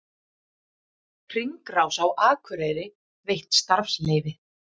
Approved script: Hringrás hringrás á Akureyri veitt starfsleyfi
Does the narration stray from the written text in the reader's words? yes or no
yes